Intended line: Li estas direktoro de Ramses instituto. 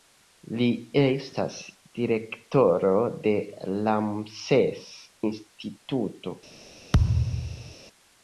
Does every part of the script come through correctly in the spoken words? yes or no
yes